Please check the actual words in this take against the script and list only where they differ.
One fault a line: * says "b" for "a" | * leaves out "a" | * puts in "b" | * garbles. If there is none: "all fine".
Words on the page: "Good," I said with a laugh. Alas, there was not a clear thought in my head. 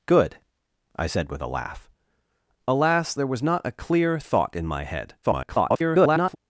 * garbles